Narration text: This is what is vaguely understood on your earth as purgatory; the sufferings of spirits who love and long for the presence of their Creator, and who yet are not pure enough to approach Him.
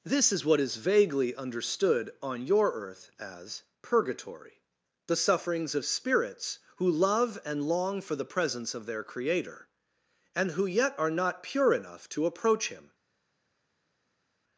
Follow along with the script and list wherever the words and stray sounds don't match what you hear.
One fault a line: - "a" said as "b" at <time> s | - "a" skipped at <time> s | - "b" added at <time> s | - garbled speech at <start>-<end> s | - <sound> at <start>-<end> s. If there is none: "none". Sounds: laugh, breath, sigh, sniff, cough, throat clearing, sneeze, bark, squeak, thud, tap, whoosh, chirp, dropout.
none